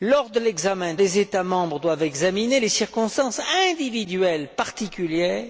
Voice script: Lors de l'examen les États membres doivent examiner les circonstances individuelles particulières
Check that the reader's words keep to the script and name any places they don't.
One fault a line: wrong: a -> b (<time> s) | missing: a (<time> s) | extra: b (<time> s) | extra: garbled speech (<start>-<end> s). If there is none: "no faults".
no faults